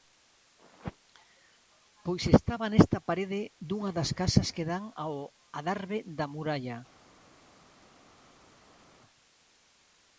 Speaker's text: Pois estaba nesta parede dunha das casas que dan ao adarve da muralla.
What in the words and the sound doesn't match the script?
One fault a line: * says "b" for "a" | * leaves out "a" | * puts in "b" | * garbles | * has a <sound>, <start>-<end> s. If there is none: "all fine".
all fine